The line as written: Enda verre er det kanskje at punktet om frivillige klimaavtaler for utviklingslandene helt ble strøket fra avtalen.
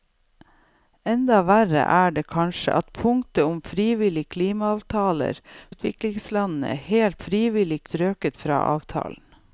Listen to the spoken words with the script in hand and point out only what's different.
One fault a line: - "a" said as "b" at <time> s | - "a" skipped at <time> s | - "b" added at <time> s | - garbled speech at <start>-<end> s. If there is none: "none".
- "for" skipped at 5.4 s
- "ble" said as "frivillige" at 7.3 s